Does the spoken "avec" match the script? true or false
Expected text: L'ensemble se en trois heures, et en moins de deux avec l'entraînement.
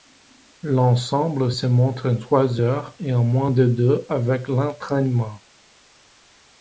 true